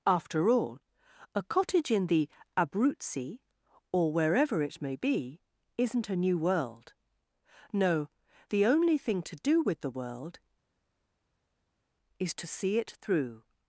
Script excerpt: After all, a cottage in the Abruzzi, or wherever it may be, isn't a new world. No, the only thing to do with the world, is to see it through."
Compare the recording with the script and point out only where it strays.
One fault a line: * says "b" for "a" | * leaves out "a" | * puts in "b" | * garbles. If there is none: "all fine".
all fine